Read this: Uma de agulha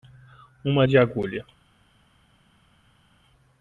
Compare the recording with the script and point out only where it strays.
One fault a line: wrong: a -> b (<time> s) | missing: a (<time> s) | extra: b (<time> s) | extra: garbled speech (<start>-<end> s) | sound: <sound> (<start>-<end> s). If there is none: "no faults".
no faults